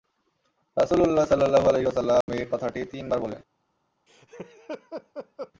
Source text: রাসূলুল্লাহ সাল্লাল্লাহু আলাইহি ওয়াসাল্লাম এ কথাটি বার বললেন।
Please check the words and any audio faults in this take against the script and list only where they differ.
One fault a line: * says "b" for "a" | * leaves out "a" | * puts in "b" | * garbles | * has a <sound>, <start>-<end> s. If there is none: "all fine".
* has a dropout, 2.2-2.3 s
* puts in "তিন"
* has a laugh, 4.1-5.5 s